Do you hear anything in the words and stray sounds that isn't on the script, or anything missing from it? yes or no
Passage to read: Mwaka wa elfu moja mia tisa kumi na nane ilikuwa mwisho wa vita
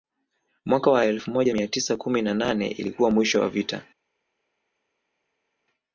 no